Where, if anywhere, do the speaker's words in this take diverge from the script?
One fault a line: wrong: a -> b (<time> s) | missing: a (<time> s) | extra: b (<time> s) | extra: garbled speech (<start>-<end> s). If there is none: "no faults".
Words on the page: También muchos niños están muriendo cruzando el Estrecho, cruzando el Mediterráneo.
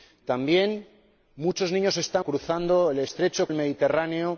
missing: muriendo (2.2 s)
missing: cruzando (3.5 s)